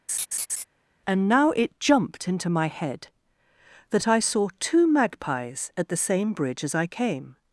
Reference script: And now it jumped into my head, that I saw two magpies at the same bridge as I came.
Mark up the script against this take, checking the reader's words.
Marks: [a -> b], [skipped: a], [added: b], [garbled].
And now it jumped into my head, that I saw two magpies at the same bridge as I came.